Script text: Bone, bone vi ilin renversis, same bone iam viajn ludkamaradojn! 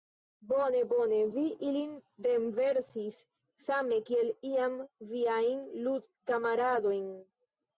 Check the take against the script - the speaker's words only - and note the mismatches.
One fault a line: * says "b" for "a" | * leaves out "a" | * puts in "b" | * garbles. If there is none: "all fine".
* says "kiel" for "bone"